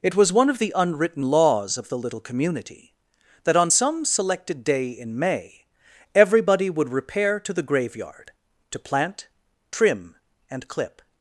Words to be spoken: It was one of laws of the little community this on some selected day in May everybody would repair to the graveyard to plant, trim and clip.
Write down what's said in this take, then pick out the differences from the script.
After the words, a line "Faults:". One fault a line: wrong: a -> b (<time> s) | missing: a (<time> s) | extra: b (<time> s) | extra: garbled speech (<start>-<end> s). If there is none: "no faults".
It was one of the unwritten laws of the little community that on some selected day in May everybody would repair to the graveyard to plant, trim and clip.
Faults:
extra: the unwritten (0.6 s)
wrong: this -> that (3.4 s)